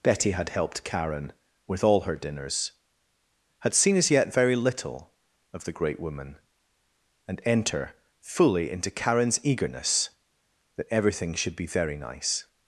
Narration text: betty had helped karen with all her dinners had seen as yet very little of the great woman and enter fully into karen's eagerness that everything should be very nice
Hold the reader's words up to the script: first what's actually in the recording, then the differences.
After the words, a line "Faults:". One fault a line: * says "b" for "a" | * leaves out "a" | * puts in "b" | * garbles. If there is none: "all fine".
betty had helped karen with all her dinners had seen as yet very little of the great woman and enter fully into karen's eagerness that everything should be very nice
Faults:
all fine